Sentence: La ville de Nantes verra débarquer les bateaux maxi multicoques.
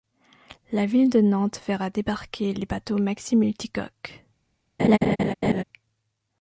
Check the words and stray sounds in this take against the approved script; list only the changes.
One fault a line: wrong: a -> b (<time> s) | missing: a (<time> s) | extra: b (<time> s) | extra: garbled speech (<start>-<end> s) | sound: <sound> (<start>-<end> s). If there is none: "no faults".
sound: laugh (4.8-5.6 s)